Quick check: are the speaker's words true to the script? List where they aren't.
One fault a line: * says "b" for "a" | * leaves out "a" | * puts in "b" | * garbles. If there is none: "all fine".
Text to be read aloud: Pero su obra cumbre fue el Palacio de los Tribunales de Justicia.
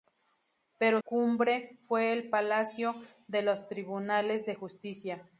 * leaves out "su obra"